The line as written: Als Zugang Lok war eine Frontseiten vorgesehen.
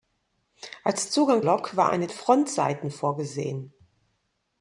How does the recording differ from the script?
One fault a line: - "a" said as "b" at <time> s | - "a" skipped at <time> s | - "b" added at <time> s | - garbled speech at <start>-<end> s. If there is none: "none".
none